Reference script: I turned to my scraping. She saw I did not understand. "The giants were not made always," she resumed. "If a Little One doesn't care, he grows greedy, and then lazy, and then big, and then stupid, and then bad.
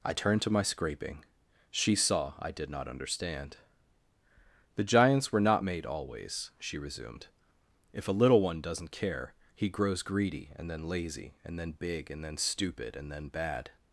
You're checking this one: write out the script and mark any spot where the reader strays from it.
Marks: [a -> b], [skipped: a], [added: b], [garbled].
I turned to my scraping. She saw I did not understand. "The giants were not made always," she resumed. "If a Little One doesn't care, he grows greedy, and then lazy, and then big, and then stupid, and then bad.